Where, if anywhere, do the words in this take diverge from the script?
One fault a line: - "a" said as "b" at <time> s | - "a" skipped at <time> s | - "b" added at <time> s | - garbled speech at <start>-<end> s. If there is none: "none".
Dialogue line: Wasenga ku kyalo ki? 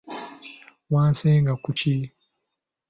- "kyalo" skipped at 1.7 s